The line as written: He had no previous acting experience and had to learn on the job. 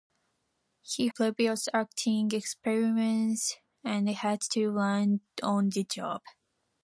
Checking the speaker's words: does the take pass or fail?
fail